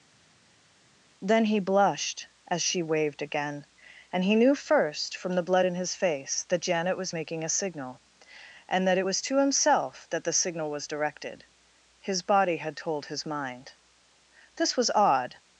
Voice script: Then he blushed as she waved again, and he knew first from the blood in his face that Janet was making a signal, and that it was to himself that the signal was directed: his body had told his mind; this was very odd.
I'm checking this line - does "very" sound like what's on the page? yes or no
no